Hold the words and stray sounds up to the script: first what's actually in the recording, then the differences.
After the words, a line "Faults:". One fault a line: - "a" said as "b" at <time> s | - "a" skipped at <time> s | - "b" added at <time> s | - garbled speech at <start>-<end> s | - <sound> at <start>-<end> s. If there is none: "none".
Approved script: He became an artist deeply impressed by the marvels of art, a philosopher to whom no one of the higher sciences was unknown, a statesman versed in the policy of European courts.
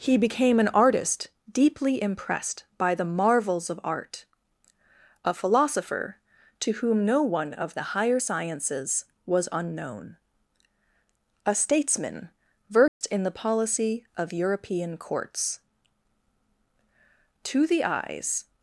He became an artist deeply impressed by the marvels of art, a philosopher to whom no one of the higher sciences was unknown, a statesman versed in the policy of European courts. To the eyes
Faults:
- dropout at 12.9-13.0 s
- "To the eyes" added at 17.4 s